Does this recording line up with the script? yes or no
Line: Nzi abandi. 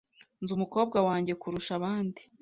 no